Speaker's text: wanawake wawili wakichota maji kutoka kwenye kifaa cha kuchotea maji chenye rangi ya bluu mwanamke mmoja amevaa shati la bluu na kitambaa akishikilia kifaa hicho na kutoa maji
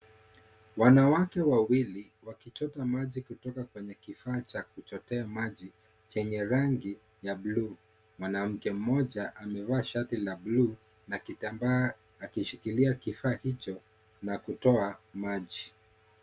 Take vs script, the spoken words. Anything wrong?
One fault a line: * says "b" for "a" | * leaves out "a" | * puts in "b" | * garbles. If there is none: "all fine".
all fine